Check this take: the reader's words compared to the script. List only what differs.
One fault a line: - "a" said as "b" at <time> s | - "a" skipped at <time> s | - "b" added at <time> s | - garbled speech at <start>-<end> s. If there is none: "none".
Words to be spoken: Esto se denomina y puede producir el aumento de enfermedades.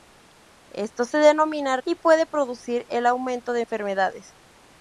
none